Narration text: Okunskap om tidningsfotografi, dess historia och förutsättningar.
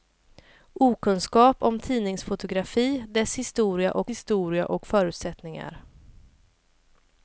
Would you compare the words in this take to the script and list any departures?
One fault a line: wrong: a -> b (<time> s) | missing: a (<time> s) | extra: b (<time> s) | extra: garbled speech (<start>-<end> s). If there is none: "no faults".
extra: historia och (4.1 s)